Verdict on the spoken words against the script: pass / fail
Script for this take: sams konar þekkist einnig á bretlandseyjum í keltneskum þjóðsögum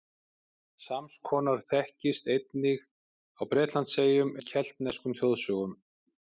pass